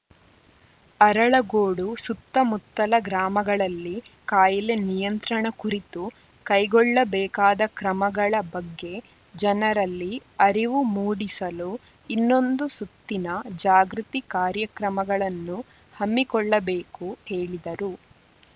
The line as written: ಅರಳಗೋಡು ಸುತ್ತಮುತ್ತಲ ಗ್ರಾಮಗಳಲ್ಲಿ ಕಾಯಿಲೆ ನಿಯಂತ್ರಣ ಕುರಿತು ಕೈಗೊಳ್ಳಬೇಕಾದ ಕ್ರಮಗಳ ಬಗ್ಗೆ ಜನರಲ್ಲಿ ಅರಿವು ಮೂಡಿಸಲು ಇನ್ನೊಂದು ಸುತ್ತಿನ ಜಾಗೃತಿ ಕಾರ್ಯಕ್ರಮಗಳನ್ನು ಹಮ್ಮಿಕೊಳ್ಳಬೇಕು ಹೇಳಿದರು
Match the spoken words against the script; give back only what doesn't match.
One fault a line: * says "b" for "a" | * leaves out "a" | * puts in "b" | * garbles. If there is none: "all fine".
all fine